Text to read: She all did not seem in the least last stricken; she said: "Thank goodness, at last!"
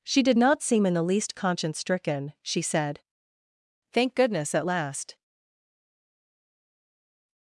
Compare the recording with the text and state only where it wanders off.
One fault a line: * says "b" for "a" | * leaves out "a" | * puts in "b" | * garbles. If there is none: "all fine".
* leaves out "all"
* says "conscience" for "last"